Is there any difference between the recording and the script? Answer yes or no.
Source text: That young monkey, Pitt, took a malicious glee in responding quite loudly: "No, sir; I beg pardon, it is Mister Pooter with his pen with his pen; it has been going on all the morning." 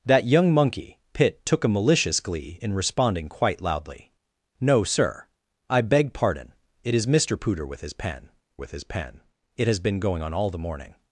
no